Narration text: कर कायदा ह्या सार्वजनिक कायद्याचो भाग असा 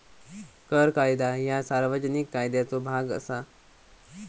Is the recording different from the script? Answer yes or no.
no